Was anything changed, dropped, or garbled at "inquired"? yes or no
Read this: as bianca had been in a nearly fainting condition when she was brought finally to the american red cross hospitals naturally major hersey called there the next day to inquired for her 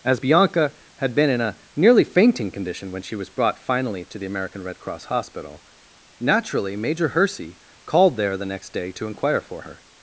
yes